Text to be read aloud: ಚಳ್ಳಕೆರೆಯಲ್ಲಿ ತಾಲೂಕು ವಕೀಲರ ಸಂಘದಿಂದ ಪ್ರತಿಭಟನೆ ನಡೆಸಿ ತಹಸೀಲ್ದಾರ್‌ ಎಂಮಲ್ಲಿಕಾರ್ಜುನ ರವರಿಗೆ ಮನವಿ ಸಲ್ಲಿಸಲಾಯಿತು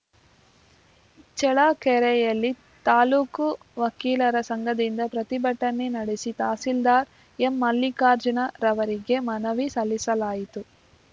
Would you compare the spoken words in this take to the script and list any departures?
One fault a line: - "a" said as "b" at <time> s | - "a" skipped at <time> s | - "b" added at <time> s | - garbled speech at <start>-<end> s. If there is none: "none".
none